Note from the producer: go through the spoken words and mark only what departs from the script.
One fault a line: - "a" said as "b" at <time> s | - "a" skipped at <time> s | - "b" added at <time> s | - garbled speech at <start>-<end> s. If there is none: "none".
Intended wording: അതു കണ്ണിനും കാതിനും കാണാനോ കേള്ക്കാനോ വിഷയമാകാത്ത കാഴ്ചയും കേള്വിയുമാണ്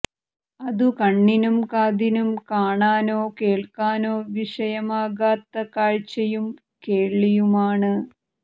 none